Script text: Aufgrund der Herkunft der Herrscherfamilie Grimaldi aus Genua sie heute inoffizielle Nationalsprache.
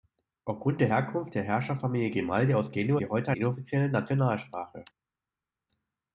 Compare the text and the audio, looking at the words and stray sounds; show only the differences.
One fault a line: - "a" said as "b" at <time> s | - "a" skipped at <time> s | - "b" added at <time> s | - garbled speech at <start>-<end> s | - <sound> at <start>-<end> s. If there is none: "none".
none